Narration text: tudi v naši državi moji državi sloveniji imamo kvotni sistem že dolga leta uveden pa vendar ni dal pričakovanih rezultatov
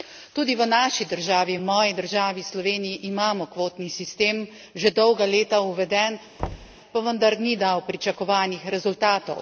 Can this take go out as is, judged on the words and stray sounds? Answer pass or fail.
fail